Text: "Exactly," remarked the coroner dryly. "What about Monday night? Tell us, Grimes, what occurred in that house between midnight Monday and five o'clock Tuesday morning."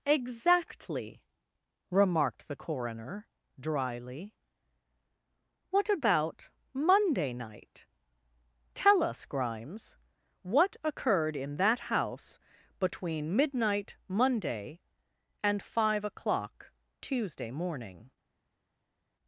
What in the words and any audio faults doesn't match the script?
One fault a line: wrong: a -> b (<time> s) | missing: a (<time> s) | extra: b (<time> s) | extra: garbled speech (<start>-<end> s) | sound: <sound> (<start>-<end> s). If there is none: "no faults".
no faults